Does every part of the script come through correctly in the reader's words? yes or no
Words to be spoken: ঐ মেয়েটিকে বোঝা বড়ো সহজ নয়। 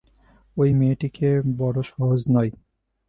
no